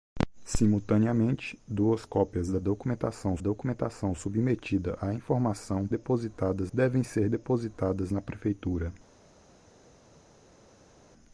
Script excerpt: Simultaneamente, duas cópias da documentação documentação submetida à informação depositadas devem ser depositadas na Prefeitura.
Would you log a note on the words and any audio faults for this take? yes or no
no